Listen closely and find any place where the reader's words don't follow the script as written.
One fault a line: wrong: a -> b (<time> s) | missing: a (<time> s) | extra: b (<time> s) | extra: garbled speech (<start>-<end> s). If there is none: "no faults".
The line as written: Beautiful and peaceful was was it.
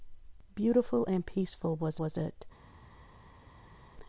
no faults